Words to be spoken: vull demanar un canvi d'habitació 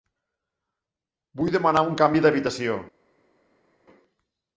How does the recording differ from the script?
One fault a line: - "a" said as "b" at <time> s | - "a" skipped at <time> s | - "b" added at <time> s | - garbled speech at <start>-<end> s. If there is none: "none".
none